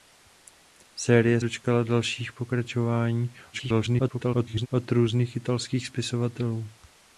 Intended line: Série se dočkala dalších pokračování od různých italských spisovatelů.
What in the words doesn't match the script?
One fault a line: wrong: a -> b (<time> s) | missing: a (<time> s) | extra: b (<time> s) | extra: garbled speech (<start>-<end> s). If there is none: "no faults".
missing: se (1.4 s)
extra: garbled speech (3.5-4.7 s)